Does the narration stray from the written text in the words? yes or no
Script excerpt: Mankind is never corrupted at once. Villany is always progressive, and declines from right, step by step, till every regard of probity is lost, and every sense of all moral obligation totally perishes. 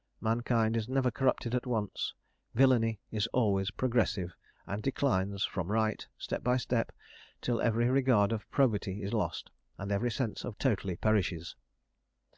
yes